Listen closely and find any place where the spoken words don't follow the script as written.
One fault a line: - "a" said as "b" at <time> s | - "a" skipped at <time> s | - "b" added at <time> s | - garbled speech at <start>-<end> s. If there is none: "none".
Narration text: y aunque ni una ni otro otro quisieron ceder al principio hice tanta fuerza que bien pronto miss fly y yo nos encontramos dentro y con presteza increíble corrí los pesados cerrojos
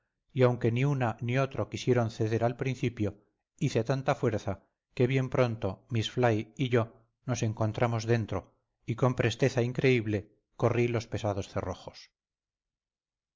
- "otro" skipped at 1.7 s